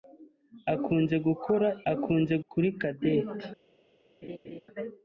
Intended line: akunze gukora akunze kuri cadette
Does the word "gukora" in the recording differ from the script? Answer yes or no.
no